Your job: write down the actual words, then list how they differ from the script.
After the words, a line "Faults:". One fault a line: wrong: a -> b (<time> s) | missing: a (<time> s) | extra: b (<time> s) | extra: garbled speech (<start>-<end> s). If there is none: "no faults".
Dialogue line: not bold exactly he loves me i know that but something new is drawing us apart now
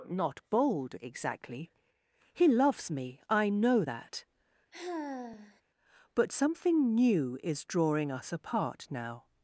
not bold exactly he loves me i know that but something new is drawing us apart now
Faults:
no faults